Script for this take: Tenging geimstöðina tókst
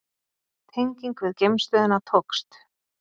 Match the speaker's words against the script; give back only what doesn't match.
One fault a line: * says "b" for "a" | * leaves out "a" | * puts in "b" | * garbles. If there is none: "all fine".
* puts in "við"